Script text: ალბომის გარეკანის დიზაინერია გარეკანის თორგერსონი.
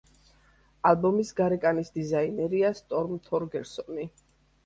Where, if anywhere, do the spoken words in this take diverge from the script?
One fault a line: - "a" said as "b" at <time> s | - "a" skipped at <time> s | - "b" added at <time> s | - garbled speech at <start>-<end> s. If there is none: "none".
- "გარეკანის" said as "სტორმ" at 2.8 s